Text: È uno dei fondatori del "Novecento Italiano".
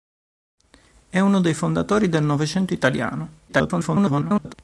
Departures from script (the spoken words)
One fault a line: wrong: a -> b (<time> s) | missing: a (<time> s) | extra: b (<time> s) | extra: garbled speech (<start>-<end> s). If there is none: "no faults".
extra: garbled speech (3.5-4.5 s)